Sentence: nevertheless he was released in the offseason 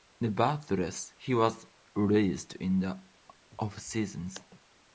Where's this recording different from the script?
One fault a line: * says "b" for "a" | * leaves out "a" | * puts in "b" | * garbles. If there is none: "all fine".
all fine